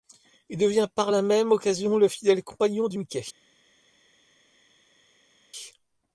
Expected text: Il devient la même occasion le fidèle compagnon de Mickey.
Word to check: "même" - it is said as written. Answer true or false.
true